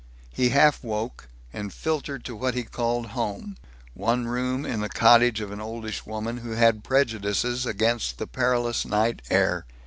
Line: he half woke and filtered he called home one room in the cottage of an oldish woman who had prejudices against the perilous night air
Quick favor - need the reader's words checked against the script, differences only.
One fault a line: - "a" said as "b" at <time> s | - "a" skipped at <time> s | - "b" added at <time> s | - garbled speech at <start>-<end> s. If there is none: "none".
- "to what" added at 2.2 s